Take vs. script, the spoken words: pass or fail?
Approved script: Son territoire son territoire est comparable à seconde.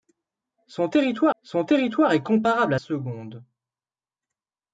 pass